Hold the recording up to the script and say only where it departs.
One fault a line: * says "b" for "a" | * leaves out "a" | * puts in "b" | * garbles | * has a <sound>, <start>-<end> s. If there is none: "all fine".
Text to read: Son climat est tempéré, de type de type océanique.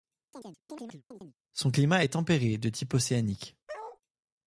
* has a chirp, 0.3-1.4 s
* leaves out "de type"
* has a bark, 3.7-4.0 s